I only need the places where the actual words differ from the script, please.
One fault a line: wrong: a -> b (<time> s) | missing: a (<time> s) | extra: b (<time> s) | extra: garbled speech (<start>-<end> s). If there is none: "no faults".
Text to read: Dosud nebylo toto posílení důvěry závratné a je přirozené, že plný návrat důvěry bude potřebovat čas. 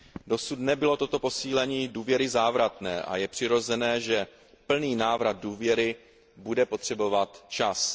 no faults